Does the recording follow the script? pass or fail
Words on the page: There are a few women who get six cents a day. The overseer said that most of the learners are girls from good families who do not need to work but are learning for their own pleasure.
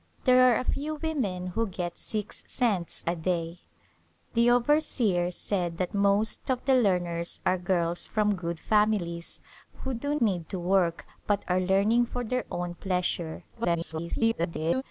fail